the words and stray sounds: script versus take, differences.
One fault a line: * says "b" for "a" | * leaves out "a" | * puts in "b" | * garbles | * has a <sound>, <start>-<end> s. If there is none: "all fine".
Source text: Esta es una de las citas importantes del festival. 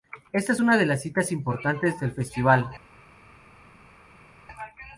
all fine